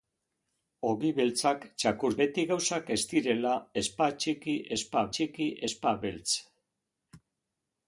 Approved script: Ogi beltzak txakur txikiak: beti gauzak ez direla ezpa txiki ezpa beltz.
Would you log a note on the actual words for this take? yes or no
yes